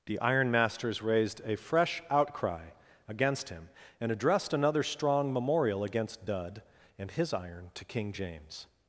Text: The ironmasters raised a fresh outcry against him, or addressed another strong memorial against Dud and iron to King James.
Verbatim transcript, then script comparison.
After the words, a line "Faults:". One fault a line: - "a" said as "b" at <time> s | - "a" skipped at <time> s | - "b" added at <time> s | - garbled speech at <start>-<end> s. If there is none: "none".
The ironmasters raised a fresh outcry against him, and addressed another strong memorial against Dud and his iron to King James.
Faults:
- "or" said as "and" at 4.0 s
- "his" added at 7.1 s